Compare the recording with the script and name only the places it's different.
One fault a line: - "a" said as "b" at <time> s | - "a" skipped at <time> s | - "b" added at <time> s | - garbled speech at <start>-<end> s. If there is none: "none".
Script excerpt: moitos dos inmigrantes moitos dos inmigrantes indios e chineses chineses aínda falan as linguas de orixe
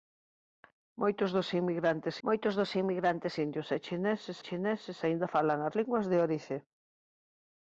none